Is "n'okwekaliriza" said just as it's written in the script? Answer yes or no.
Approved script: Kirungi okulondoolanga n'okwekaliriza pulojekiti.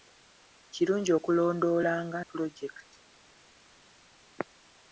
no